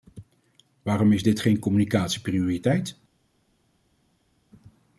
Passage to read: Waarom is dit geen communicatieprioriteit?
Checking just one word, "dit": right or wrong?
right